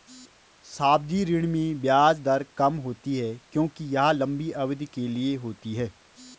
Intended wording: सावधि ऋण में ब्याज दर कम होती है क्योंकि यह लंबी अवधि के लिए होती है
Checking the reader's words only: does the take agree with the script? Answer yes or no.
yes